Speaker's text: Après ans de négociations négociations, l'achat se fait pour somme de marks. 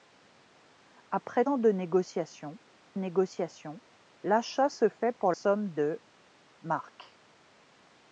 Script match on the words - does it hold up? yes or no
yes